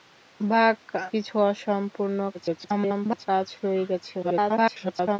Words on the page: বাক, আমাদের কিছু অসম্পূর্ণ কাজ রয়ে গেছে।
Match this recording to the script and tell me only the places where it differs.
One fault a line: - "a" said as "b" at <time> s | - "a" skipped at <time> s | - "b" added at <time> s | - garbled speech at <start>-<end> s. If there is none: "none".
- "আমাদের" skipped at 0.8 s
- garbled speech at 2.3-3.3 s
- garbled speech at 4.2-5.2 s